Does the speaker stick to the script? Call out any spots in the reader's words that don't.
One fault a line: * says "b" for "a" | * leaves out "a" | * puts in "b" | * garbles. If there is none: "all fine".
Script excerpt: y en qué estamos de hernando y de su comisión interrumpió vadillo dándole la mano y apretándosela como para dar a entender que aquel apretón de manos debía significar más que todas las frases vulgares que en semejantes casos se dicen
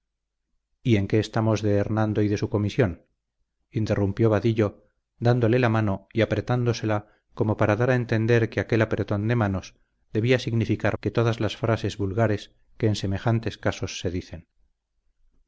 * leaves out "más"